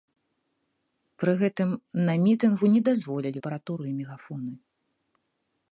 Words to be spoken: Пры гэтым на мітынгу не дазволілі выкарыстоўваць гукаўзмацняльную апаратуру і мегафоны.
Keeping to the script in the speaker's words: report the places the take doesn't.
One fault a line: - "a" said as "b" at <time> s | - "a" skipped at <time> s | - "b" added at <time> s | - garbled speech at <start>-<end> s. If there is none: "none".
- "выкарыстоўваць гукаўзмацняльную" skipped at 3.4 s